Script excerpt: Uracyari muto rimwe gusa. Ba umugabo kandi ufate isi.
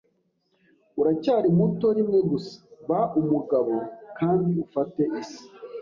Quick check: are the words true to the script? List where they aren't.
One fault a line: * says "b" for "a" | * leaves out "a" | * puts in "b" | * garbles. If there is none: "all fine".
all fine